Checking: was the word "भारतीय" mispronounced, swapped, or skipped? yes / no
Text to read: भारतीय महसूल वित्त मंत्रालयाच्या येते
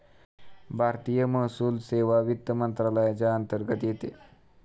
no